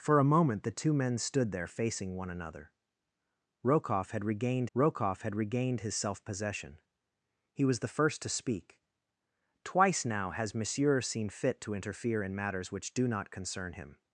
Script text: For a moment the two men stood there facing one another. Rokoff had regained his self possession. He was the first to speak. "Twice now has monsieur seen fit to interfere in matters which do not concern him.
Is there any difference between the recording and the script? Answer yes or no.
yes